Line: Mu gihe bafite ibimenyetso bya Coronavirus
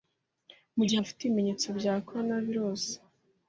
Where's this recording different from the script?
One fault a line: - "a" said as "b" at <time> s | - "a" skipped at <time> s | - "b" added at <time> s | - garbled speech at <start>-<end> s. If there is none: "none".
none